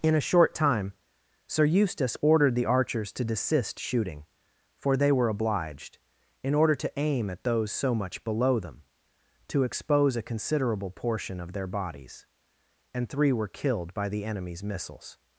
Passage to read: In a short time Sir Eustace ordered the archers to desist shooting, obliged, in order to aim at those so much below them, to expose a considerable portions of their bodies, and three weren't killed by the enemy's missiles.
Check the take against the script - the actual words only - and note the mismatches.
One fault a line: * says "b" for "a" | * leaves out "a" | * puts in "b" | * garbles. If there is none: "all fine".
* puts in "for they were"
* says "portion" for "portions"
* says "were" for "weren't"